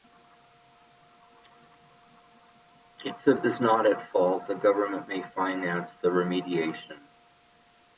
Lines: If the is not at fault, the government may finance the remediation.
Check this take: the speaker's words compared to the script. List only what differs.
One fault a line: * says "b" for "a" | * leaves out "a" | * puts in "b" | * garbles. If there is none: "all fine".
all fine